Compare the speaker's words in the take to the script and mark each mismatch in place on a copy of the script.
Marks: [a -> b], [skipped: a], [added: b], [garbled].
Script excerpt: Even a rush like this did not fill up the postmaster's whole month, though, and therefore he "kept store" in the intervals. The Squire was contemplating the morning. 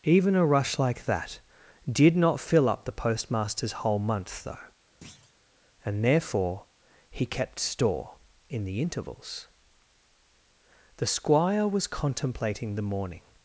Even a rush like [this -> that] did not fill up the postmaster's whole month, though, and therefore he "kept store" in the intervals. The Squire was contemplating the morning.